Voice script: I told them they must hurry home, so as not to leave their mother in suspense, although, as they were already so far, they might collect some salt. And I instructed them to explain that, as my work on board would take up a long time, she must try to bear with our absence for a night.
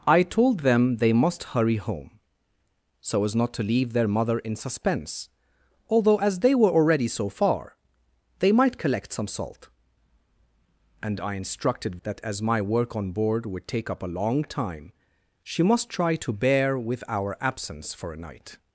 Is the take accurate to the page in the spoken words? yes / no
no